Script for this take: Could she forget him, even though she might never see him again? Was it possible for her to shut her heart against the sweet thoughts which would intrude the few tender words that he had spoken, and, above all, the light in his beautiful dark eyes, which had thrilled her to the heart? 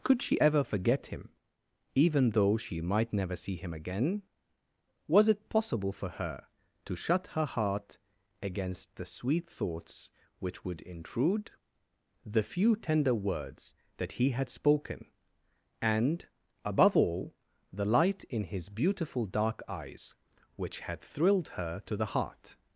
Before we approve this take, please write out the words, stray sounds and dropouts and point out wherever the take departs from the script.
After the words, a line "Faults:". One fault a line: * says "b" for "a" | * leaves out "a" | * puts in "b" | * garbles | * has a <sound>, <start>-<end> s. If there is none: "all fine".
Could she ever forget him, even though she might never see him again? Was it possible for her to shut her heart against the sweet thoughts which would intrude the few tender words that he had spoken, and, above all, the light in his beautiful dark eyes, which had thrilled her to the heart?
Faults:
* puts in "ever"